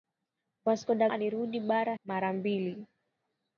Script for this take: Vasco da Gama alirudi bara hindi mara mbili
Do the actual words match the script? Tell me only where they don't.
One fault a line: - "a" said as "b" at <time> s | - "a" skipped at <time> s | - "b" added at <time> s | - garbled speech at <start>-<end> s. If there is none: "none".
- "Gama" skipped at 1.1 s
- "hindi" skipped at 1.9 s